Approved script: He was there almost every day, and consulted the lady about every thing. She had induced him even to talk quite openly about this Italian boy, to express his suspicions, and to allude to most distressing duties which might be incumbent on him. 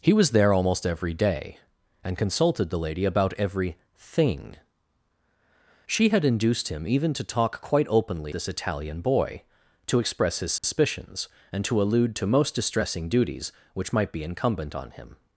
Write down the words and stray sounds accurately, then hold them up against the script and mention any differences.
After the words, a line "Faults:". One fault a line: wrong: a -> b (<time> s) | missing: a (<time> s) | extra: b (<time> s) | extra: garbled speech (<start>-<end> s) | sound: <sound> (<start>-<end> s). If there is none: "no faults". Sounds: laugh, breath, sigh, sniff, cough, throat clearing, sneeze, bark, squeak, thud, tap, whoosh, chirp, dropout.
He was there almost every day, and consulted the lady about every thing. She had induced him even to talk quite openly this Italian boy, to express his suspicions, and to allude to most distressing duties which might be incumbent on him.
Faults:
missing: about (8.3 s)
sound: dropout (10.6-10.6 s)